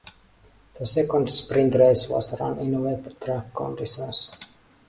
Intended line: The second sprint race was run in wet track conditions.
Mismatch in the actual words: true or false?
false